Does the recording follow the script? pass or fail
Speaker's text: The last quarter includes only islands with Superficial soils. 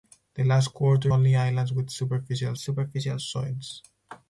fail